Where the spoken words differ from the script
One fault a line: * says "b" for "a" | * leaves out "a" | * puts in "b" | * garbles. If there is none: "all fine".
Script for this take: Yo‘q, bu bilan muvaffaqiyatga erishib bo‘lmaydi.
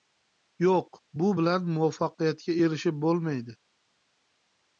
all fine